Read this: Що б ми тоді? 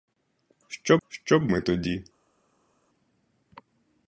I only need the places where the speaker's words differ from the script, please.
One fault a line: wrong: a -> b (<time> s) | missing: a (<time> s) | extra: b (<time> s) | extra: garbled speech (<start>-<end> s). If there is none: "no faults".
extra: що (1.1 s)